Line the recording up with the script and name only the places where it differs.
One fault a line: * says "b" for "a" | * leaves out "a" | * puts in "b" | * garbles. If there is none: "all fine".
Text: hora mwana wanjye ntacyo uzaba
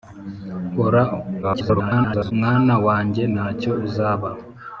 * garbles